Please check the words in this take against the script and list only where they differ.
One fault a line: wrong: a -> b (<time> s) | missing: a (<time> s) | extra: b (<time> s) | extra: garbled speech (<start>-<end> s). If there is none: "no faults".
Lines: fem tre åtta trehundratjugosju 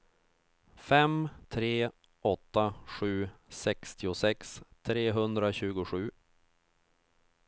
extra: sju sextiosex (2.9 s)